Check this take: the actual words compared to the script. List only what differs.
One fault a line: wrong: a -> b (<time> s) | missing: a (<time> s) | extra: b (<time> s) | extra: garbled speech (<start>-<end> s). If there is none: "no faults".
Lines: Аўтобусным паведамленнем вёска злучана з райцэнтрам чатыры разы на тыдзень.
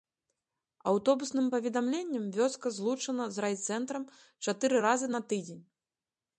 no faults